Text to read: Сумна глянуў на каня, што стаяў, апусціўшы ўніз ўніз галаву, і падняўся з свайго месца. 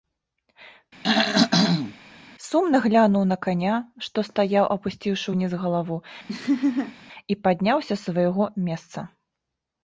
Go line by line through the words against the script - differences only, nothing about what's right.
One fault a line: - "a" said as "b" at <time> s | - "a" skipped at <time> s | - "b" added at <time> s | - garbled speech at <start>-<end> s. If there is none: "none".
- "ўніз" skipped at 5.5 s